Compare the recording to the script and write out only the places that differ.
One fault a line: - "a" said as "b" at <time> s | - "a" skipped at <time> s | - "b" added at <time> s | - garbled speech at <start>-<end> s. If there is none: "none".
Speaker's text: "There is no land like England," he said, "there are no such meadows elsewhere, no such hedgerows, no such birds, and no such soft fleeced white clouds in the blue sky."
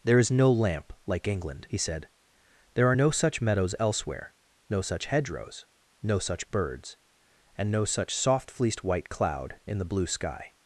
- "land" said as "lamp" at 0.5 s
- "clouds" said as "cloud" at 9.1 s